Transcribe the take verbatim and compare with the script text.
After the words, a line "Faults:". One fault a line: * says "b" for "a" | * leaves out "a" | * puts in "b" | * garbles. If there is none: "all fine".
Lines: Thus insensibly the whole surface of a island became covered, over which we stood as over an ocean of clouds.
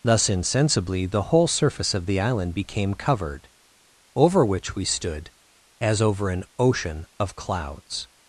Thus insensibly the whole surface of the island became covered, over which we stood as over an ocean of clouds.
Faults:
* says "the" for "a"